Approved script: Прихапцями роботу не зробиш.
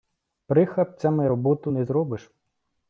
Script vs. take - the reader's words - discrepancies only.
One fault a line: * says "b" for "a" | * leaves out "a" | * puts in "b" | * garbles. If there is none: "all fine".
all fine